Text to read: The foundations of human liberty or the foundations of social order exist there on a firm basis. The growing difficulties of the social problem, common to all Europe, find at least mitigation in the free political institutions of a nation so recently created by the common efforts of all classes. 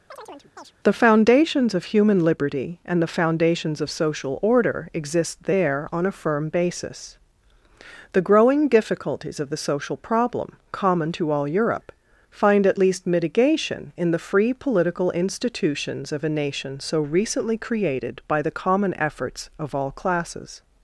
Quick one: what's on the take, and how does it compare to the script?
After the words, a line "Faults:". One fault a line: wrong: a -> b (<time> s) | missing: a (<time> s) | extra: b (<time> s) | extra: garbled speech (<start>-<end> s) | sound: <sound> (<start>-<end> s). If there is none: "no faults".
The foundations of human liberty and the foundations of social order exist there on a firm basis. The growing difficulties of the social problem, common to all Europe, find at least mitigation in the free political institutions of a nation so recently created by the common efforts of all classes.
Faults:
sound: chirp (0.1-0.7 s)
wrong: or -> and (2.8 s)